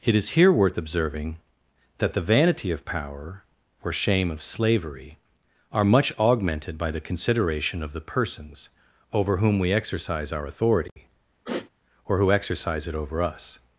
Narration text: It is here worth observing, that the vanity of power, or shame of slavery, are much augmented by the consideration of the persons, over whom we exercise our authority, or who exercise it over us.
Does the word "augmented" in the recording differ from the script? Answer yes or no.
no